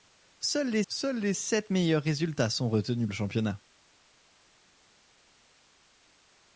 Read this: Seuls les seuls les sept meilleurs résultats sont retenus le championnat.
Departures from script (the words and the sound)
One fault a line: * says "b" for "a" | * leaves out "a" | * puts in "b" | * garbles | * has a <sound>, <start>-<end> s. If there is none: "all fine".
all fine